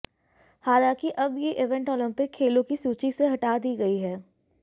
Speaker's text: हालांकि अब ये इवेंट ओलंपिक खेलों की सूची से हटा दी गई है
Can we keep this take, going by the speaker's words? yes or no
yes